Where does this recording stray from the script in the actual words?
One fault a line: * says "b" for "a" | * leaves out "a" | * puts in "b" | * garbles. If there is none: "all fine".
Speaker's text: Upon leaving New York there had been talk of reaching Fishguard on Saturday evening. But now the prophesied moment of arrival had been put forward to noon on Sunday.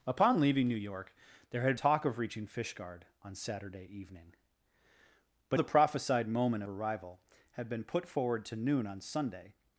* leaves out "been"
* leaves out "now"
* leaves out "of"